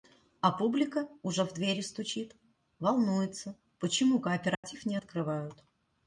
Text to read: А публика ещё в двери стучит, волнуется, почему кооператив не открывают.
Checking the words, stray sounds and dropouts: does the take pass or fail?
fail